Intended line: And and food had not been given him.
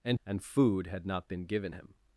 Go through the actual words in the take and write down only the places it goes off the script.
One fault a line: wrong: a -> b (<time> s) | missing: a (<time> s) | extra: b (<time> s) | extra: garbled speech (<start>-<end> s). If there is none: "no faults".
no faults